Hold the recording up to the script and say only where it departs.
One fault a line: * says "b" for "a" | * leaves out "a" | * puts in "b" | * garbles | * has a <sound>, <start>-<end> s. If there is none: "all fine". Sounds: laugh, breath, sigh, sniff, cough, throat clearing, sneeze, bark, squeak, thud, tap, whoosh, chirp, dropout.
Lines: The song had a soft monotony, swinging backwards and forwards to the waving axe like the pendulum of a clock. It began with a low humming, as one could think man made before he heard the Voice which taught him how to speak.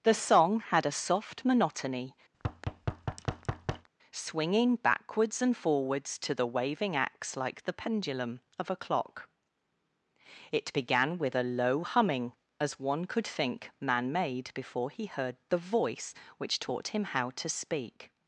* has a thud, 2.3-3.9 s